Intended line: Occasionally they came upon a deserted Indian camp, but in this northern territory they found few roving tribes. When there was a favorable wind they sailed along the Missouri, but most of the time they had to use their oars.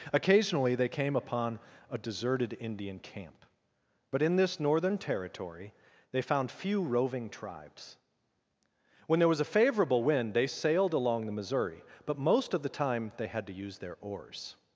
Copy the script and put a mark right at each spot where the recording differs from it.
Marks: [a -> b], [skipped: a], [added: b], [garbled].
Occasionally they came upon a deserted Indian camp, but in this northern territory they found few roving tribes. When there was a favorable wind they sailed along the Missouri, but most of the time they had to use their oars.